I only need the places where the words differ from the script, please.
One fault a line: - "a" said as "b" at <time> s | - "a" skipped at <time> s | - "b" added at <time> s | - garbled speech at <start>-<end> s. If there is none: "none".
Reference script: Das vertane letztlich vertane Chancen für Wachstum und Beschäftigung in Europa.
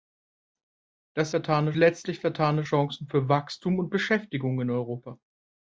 none